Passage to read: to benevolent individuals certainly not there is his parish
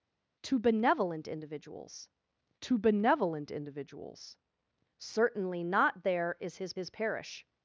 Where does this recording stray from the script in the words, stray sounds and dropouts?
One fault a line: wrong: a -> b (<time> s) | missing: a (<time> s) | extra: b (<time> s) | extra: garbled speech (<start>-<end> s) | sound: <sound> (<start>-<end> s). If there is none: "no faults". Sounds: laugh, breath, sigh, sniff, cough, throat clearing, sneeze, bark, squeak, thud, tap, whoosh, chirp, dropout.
extra: to benevolent individuals (2.6 s)
extra: his (6.7 s)